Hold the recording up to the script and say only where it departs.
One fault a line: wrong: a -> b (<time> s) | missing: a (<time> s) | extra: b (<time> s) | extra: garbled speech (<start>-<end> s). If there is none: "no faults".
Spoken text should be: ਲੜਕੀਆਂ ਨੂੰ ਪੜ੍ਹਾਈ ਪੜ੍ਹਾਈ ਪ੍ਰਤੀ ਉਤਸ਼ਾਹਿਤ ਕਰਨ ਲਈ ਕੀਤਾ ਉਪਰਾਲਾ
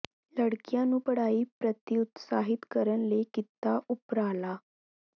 missing: ਪੜ੍ਹਾਈ (1.4 s)